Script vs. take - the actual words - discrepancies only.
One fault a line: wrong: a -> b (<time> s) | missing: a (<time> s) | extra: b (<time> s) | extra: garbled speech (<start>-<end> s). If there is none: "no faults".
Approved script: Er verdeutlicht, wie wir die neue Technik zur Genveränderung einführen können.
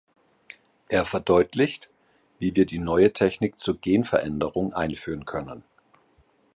no faults